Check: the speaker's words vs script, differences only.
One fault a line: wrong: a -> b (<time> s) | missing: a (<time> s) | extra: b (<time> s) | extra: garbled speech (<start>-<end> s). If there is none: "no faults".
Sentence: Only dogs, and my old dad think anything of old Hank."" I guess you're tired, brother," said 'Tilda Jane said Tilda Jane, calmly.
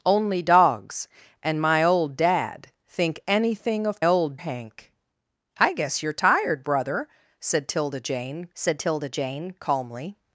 no faults